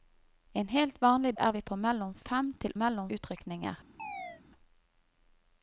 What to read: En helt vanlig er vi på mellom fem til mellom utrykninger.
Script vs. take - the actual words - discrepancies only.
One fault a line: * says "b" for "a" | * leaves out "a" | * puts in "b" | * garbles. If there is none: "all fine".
all fine